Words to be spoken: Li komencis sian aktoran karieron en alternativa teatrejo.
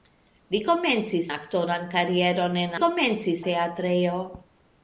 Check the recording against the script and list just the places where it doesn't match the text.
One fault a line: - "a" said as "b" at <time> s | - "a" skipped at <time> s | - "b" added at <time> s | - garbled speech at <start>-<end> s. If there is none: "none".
- "sian" skipped at 1.3 s
- "alternativa" said as "komencis" at 2.8 s